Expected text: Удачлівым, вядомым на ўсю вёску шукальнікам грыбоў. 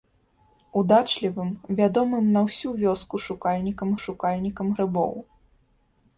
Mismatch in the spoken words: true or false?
true